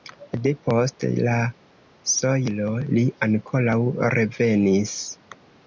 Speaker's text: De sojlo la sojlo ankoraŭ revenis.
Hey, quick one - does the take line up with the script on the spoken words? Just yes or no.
no